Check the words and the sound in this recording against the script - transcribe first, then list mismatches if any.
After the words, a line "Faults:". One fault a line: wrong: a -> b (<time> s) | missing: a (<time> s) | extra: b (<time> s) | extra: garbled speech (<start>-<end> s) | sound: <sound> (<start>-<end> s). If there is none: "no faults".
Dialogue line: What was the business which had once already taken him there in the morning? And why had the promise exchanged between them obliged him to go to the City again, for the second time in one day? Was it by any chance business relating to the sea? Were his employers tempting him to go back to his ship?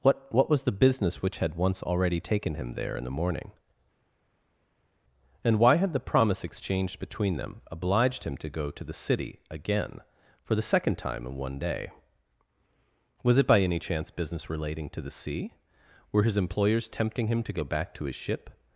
What what was the business which had once already taken him there in the morning? And why had the promise exchanged between them obliged him to go to the City again, for the second time in one day? Was it by any chance business relating to the sea? Were his employers tempting him to go back to his ship?
Faults:
extra: what (0.3 s)